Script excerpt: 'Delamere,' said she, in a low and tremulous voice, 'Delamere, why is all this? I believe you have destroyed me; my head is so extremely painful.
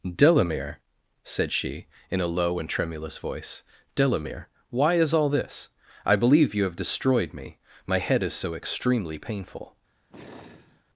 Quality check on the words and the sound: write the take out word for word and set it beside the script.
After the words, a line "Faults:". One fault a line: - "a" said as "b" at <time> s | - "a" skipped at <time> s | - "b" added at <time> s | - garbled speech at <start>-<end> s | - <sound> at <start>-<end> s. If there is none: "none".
'Delamere,' said she, in a low and tremulous voice, 'Delamere, why is all this? I believe you have destroyed me; my head is so extremely painful.
Faults:
- sigh at 10.1-10.8 s